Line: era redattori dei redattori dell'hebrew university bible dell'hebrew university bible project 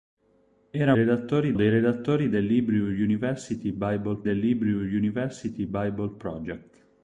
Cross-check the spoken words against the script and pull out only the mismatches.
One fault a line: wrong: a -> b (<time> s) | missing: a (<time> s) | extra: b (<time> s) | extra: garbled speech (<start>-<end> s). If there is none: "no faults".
no faults